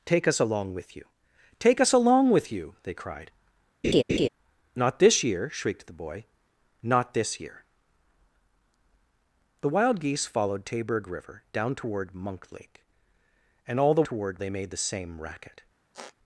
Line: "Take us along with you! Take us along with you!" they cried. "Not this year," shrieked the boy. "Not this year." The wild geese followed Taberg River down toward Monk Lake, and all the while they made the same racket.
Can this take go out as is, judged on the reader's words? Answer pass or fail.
fail